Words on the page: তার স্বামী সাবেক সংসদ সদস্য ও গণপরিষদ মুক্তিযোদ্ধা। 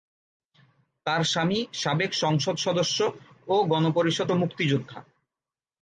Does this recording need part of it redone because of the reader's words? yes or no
no